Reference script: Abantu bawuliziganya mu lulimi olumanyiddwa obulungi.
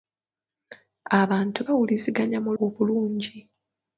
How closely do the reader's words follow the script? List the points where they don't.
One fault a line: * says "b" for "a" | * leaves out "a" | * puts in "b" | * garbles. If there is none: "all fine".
* leaves out "lulimi olumanyiddwa"